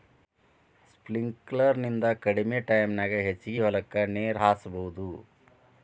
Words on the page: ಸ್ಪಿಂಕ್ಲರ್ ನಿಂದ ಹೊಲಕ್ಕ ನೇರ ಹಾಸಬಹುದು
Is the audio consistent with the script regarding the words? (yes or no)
no